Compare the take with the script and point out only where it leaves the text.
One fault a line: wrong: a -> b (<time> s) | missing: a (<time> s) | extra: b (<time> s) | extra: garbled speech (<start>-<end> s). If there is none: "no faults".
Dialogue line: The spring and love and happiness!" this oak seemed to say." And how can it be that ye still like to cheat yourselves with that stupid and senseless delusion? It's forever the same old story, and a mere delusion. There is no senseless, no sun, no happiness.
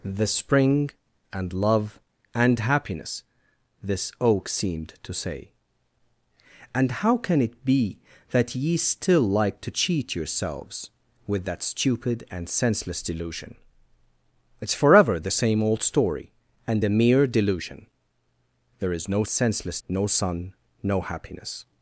no faults